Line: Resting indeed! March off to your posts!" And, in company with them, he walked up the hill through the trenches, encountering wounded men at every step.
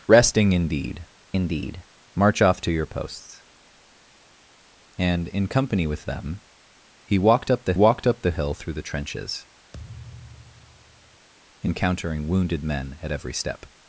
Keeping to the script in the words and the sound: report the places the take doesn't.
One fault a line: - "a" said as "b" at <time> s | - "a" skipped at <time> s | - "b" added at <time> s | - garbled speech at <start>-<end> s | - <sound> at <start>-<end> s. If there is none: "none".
- "indeed" added at 1.3 s
- "walked up the" added at 7.7 s
- thud at 9.7-11.3 s